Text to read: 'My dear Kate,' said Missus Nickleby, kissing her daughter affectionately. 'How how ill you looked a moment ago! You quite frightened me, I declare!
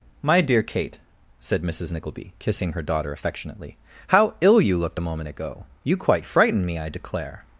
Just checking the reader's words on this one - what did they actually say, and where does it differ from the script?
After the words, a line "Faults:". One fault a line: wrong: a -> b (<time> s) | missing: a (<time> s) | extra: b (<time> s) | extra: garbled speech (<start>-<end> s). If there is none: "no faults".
'My dear Kate,' said Missus Nickleby, kissing her daughter affectionately. 'How ill you looked a moment ago! You quite frightened me, I declare!
Faults:
missing: how (4.3 s)